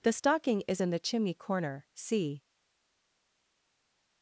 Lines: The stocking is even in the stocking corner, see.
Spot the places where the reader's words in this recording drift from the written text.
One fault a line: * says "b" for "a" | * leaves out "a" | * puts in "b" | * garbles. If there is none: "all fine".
* leaves out "even"
* says "chimney" for "stocking"